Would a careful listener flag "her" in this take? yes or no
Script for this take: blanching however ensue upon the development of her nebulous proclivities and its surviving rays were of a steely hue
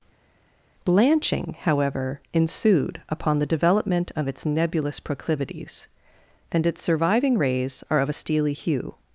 yes